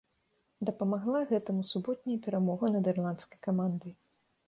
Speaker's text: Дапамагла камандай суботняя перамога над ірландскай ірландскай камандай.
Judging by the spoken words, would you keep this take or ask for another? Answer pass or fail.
fail